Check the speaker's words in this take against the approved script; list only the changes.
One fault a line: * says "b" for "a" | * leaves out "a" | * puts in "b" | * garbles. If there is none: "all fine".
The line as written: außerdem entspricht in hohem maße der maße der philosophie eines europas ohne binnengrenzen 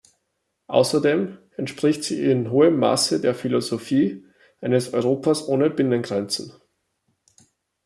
* puts in "sie"
* leaves out "maße der"